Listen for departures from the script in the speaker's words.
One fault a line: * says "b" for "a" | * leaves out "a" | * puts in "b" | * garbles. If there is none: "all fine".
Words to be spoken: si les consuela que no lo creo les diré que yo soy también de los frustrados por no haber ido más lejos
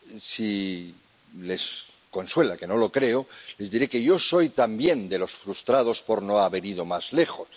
all fine